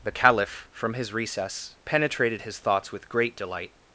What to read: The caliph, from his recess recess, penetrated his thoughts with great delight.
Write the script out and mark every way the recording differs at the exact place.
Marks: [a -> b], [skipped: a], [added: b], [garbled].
The caliph, from his recess [skipped: recess,] penetrated his thoughts with great delight.